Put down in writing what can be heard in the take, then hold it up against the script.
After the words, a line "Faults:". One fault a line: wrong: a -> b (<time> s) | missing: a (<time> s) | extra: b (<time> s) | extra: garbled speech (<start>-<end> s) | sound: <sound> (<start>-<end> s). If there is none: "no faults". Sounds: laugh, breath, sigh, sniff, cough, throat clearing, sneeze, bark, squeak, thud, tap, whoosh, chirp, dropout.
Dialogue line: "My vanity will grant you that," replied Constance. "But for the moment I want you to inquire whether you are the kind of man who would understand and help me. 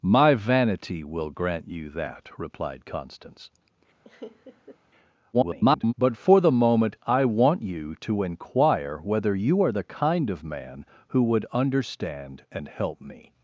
"My vanity will grant you that," replied Constance. [garbled] "But for the moment I want you to inquire whether you are the kind of man who would understand and help me.
Faults:
sound: laugh (4.0-4.8 s)
extra: garbled speech (5.3-5.9 s)